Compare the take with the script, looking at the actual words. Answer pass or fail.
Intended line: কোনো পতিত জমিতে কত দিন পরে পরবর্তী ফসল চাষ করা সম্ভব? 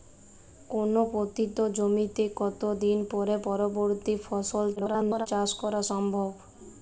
fail